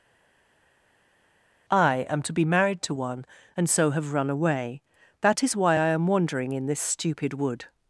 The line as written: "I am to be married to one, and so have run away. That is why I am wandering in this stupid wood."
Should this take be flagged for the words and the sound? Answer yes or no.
no